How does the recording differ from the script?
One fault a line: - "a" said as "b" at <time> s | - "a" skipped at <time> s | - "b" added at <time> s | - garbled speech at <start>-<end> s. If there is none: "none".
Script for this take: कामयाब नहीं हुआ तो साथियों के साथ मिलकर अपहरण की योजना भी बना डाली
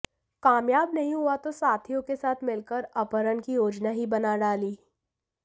- "भी" said as "ही" at 3.9 s